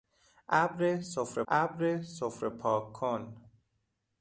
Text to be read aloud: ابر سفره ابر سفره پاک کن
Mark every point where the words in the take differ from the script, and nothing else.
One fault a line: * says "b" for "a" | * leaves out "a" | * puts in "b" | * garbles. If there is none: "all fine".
all fine